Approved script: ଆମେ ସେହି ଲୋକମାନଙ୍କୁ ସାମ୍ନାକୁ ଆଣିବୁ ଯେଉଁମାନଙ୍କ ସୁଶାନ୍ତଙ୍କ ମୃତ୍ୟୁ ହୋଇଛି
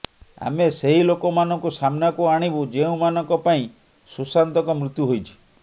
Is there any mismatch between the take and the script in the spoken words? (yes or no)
yes